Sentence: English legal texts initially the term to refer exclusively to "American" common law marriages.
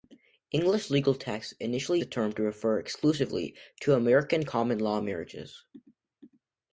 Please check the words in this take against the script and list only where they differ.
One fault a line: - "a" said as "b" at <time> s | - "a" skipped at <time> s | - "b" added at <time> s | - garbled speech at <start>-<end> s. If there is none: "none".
none